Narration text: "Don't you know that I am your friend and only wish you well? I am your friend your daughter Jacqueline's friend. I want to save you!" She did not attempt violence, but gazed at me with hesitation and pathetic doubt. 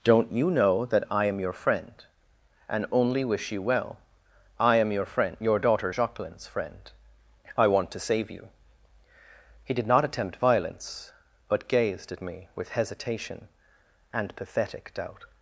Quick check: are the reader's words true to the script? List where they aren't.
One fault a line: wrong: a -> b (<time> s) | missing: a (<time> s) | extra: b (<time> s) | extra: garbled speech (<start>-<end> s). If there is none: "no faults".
wrong: She -> He (9.6 s)